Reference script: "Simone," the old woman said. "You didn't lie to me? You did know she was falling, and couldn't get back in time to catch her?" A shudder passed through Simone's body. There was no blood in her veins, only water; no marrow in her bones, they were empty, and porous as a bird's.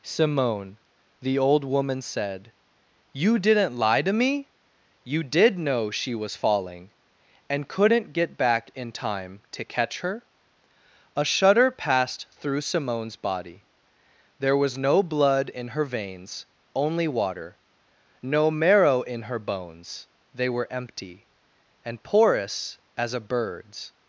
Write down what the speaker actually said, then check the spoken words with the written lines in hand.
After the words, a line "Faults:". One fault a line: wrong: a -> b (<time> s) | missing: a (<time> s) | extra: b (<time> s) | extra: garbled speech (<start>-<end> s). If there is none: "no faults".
"Simone," the old woman said. "You didn't lie to me? You did know she was falling, and couldn't get back in time to catch her?" A shudder passed through Simone's body. There was no blood in her veins, only water; no marrow in her bones, they were empty, and porous as a bird's.
Faults:
no faults